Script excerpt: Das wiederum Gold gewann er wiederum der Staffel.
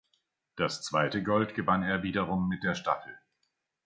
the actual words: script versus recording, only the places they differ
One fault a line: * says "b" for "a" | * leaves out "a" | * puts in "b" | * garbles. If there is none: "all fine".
* says "zweite" for "wiederum"
* puts in "mit"